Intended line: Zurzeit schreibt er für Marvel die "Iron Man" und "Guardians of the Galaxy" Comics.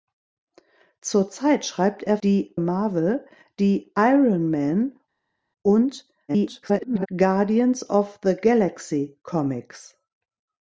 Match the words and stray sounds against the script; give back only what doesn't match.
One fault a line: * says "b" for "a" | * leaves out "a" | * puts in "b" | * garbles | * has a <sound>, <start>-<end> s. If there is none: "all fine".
* says "die" for "für"
* garbles